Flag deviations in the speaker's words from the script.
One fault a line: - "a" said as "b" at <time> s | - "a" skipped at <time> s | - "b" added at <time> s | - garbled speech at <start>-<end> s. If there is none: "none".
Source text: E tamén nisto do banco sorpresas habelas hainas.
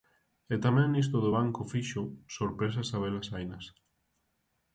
- "fixo" added at 1.7 s